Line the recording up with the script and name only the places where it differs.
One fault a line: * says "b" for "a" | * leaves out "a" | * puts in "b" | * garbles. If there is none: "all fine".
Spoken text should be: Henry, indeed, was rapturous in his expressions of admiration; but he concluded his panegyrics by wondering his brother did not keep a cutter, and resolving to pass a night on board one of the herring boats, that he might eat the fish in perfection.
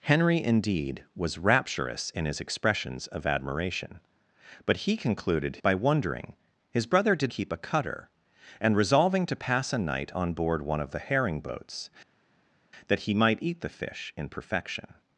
* leaves out "his panegyrics"
* leaves out "not"